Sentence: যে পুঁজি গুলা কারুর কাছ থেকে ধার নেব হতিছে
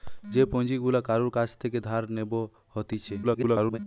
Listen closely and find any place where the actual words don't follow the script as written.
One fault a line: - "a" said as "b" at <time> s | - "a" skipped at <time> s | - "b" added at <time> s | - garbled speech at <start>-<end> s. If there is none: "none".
- garbled speech at 3.2-3.8 s